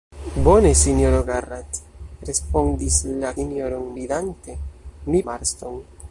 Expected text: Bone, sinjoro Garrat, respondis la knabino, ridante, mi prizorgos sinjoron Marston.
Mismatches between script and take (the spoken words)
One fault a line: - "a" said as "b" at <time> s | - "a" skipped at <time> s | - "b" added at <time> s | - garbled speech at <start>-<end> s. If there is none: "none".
- "knabino" said as "sinjoron" at 3.3 s
- "prizorgos sinjoron" skipped at 5.2 s